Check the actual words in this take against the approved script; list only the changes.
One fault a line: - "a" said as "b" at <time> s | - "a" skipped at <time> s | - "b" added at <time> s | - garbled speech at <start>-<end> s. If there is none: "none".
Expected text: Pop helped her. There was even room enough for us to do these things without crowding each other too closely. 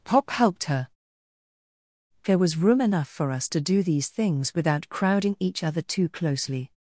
- "even" skipped at 2.6 s